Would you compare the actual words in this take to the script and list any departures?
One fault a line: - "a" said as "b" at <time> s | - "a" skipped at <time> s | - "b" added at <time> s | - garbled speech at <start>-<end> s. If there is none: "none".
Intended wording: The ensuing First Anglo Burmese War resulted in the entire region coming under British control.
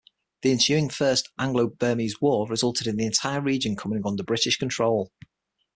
none